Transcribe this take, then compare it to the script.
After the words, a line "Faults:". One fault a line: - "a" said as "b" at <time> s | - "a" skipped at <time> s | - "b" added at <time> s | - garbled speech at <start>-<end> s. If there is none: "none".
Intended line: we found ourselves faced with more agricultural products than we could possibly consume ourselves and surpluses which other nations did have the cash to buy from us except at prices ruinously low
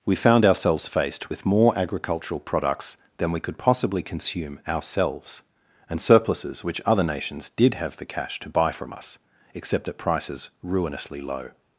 we found ourselves faced with more agricultural products than we could possibly consume ourselves and surpluses which other nations did have the cash to buy from us except at prices ruinously low
Faults:
none